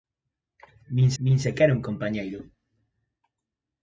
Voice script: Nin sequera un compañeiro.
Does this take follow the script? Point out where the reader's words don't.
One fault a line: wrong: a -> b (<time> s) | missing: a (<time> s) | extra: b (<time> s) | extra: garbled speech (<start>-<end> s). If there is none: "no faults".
extra: nin (1.2 s)